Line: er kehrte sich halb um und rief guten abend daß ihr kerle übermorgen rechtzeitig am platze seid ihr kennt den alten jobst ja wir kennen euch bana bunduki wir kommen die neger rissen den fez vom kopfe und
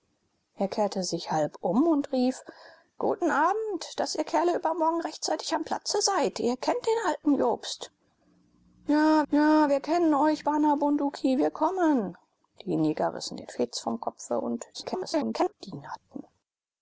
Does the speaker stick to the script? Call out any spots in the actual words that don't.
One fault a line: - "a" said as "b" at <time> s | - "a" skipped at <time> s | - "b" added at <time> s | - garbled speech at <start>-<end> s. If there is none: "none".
- "ja" added at 9.3 s
- garbled speech at 14.7-15.5 s